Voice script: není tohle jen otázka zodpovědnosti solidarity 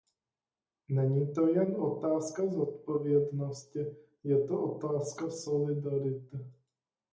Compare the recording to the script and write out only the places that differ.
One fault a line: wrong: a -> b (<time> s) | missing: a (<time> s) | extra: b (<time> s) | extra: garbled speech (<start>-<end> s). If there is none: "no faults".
wrong: tohle -> to (1.3 s)
extra: je to otázka (4.2 s)